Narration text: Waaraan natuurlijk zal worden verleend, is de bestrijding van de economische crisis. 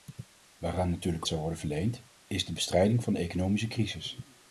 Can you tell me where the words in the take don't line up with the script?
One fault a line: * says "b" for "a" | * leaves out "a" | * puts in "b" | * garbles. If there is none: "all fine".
all fine